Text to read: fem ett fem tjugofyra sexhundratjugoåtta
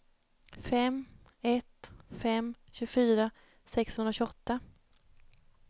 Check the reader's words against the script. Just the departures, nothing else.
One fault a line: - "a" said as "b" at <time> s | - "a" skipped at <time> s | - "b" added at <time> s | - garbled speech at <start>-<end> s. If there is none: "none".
none